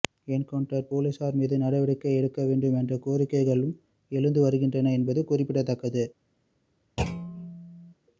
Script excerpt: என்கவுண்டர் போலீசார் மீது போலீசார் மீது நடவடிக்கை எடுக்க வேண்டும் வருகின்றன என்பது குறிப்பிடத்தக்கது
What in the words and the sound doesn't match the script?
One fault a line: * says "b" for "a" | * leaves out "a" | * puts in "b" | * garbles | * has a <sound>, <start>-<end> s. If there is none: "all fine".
* leaves out "போலீசார் மீது"
* puts in "என்ற கோரிக்கைகளும் எழுந்து"
* has a thud, 7.0-7.9 s